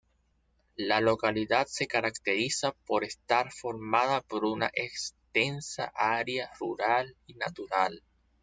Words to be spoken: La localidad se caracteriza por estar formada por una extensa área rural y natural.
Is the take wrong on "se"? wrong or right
right